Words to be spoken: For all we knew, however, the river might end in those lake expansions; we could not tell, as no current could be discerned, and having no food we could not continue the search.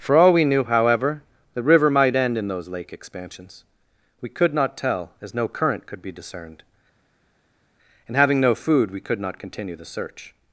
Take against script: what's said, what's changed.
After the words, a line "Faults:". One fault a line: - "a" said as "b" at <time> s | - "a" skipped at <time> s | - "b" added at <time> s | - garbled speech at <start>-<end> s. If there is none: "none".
For all we knew, however, the river might end in those lake expansions; we could not tell, as no current could be discerned, and having no food we could not continue the search.
Faults:
none